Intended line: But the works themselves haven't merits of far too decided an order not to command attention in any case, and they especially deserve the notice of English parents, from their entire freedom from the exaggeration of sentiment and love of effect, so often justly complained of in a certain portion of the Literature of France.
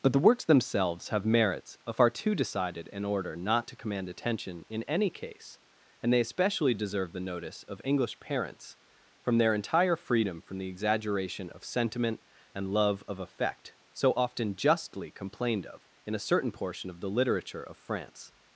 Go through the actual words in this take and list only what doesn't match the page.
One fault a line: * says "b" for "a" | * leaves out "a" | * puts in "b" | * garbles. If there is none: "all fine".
* says "have" for "haven't"